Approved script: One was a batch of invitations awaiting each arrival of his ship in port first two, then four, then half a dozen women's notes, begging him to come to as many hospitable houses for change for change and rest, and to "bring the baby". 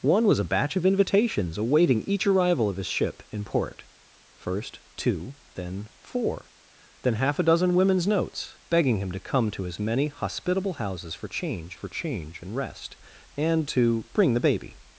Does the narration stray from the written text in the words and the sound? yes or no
no